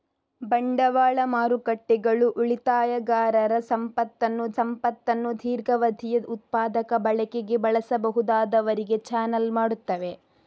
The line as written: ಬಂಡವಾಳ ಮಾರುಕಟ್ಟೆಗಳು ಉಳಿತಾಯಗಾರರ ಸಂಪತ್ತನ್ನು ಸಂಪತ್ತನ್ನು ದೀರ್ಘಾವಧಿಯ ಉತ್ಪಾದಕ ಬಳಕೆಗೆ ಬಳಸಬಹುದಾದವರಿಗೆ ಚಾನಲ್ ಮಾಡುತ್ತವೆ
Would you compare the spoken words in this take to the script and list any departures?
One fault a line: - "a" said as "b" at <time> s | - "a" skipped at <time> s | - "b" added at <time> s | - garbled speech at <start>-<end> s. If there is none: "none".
none